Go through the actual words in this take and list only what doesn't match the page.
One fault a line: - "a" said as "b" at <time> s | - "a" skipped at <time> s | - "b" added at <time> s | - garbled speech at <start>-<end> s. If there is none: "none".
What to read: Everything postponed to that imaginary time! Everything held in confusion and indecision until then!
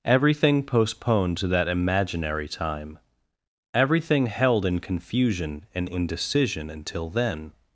none